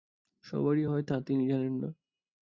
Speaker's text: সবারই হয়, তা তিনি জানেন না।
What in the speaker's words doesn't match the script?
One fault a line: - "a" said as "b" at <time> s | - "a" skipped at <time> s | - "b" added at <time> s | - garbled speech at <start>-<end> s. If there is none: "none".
none